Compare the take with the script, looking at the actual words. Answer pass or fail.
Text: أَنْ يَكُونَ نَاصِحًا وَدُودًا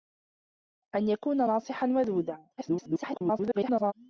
fail